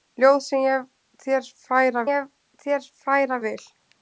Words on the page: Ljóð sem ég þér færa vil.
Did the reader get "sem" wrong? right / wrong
right